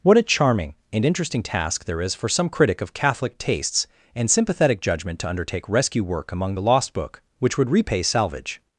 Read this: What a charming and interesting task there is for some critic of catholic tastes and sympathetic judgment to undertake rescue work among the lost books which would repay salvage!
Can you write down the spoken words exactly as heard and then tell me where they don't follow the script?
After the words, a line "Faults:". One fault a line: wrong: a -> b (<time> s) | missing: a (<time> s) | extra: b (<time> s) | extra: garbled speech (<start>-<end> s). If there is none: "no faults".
What a charming and interesting task there is for some critic of catholic tastes and sympathetic judgment to undertake rescue work among the lost book which would repay salvage!
Faults:
wrong: books -> book (6.9 s)